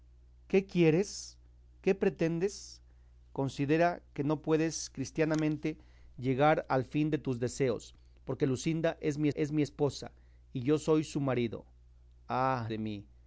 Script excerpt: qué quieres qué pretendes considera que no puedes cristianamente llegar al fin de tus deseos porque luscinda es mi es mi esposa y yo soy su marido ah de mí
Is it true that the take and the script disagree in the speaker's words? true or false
false